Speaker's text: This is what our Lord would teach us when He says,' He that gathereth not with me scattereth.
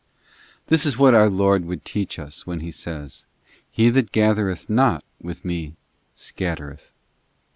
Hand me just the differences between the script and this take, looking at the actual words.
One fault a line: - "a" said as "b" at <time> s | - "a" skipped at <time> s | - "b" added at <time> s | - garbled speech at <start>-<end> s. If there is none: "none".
none